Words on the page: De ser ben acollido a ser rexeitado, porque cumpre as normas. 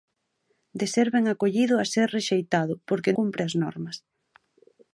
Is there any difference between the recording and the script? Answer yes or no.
no